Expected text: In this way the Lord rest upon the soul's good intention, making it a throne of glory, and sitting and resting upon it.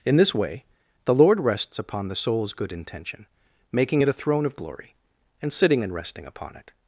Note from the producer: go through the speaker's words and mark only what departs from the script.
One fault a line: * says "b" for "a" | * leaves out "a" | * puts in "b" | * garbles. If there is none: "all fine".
* says "rests" for "rest"